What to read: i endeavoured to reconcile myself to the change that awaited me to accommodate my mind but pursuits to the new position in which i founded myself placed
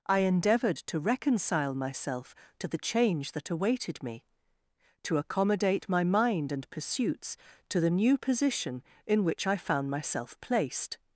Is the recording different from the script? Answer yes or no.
yes